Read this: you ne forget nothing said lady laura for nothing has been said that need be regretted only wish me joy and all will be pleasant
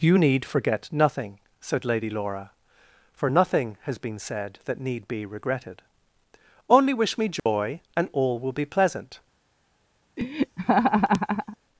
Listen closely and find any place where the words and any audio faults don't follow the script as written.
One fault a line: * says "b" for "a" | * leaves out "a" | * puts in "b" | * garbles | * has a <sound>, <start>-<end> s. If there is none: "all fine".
* says "need" for "ne"
* has a dropout, 7.4-7.5 s
* has a laugh, 10.2-11.6 s